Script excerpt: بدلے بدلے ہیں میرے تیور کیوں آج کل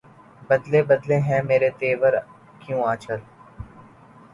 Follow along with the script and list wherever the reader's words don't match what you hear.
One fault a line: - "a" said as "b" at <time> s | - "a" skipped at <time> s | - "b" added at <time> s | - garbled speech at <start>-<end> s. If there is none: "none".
none